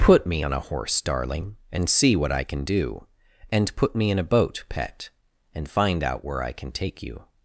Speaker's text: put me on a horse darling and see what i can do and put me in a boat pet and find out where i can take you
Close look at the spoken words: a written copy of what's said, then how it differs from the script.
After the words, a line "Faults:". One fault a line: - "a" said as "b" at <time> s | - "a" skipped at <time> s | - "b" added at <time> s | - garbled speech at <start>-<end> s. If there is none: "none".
put me on a horse darling and see what i can do and put me in a boat pet and find out where i can take you
Faults:
none